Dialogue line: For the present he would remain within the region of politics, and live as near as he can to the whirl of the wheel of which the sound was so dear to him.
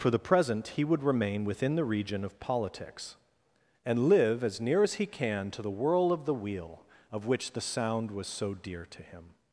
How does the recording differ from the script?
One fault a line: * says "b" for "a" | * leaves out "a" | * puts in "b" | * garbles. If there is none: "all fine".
all fine